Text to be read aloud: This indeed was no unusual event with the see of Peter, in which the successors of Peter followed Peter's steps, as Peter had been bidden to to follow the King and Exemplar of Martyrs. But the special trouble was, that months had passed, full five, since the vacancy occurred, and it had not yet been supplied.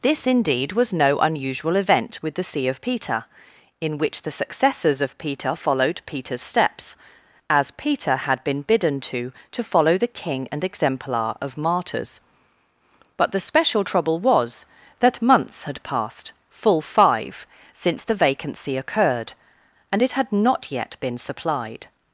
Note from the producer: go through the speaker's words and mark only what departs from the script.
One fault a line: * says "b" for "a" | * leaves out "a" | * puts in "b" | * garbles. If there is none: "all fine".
all fine